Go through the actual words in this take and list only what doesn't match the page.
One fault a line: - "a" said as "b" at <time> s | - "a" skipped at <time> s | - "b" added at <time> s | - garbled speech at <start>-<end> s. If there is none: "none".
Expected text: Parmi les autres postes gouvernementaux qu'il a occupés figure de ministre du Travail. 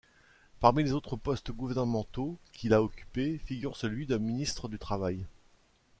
- "celui" added at 3.8 s